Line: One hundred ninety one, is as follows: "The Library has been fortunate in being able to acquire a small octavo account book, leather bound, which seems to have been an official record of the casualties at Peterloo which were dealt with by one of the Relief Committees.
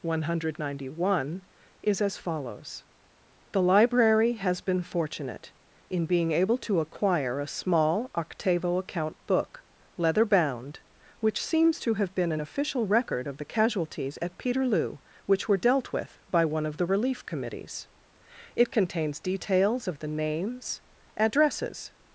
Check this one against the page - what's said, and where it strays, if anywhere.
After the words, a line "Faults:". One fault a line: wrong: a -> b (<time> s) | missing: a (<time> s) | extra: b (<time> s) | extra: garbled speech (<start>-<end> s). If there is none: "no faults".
One hundred ninety one, is as follows: "The Library has been fortunate in being able to acquire a small octavo account book, leather bound, which seems to have been an official record of the casualties at Peterloo which were dealt with by one of the Relief Committees. It contains details of the names, addresses.
Faults:
extra: It contains details of the names addresses (18.5 s)